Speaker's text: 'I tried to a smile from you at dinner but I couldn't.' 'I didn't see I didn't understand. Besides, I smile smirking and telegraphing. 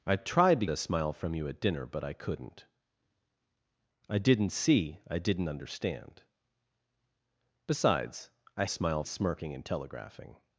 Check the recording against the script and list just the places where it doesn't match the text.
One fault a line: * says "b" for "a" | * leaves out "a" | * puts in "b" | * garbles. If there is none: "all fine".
all fine